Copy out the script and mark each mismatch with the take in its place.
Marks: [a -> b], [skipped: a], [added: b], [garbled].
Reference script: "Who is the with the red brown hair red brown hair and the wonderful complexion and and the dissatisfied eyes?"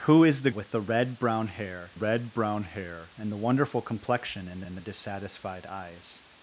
"Who is the with the red brown hair red brown hair and the wonderful complexion and and the dissatisfied eyes?"